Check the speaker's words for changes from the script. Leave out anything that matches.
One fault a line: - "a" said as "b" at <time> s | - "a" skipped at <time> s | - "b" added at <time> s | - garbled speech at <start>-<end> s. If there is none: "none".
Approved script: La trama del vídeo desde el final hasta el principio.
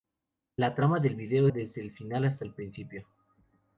none